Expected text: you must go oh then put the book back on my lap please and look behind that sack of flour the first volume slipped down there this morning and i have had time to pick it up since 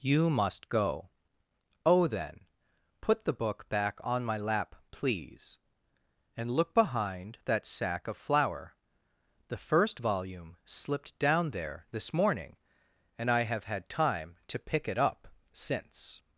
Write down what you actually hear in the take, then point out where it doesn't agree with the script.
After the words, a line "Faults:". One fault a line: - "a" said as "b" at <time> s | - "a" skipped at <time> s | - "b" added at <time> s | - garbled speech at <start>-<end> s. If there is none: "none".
you must go oh then put the book back on my lap please and look behind that sack of flour the first volume slipped down there this morning and i have had time to pick it up since
Faults:
none